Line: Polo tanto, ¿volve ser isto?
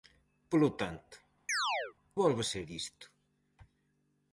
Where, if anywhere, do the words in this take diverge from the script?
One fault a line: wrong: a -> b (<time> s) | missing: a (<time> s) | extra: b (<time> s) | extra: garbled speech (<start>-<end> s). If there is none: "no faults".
no faults